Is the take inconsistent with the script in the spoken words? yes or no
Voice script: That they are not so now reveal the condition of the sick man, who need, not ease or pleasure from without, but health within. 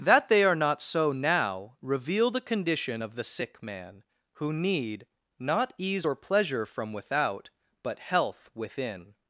no